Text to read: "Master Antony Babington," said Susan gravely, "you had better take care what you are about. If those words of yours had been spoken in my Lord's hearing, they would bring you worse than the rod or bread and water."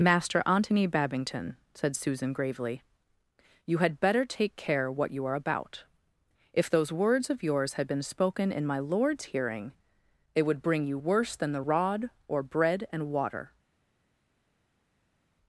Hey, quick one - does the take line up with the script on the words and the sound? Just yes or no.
no